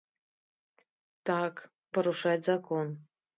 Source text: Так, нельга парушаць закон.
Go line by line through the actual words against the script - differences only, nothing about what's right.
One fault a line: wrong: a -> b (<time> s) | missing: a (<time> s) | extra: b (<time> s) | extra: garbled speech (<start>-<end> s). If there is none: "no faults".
missing: нельга (1.6 s)